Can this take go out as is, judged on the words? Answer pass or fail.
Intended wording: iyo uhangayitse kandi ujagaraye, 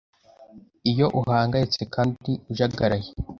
pass